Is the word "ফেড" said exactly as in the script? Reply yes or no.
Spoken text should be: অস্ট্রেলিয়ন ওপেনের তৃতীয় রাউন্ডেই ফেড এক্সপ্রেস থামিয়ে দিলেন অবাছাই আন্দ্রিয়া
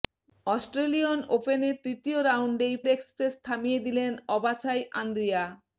no